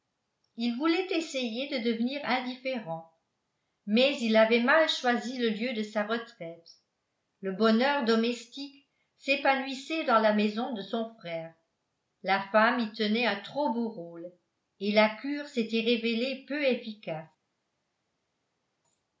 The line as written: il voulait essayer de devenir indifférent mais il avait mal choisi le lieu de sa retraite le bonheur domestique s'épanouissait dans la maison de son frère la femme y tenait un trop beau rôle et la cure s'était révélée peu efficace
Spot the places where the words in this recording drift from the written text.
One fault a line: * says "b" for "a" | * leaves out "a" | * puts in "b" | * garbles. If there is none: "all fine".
all fine